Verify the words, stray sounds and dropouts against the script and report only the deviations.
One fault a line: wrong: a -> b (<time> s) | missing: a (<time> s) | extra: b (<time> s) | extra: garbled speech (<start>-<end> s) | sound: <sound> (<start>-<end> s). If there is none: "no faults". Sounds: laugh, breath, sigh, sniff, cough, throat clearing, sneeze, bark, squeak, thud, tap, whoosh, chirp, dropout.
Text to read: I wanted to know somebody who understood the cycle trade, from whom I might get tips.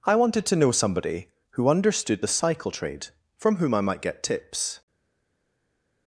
no faults